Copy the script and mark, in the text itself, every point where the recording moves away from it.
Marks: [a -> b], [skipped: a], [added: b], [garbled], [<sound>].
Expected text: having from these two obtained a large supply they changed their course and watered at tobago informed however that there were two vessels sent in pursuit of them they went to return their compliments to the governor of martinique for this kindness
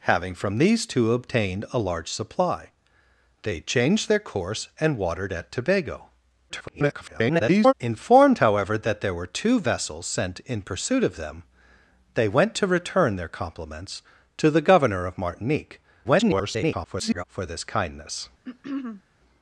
having from these two obtained a large supply they changed their course and watered at tobago [garbled] informed however that there were two vessels sent in pursuit of them they went to return their compliments to the governor of martinique [garbled] for this kindness [throat clearing]